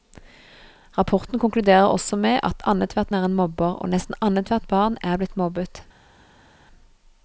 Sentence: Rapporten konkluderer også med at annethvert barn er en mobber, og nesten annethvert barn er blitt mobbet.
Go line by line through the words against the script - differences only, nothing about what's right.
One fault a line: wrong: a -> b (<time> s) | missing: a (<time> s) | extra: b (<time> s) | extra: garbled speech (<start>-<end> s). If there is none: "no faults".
missing: barn (3.1 s)